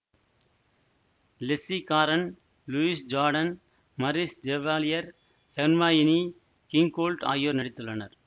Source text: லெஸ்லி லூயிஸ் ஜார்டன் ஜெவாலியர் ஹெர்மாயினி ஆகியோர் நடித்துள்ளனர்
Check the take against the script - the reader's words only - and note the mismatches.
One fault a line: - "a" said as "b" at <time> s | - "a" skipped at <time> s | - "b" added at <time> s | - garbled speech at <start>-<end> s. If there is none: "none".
- "காரன்" added at 1.9 s
- "மரிஸ்" added at 4.0 s
- "கிங்கோல்ட்" added at 6.7 s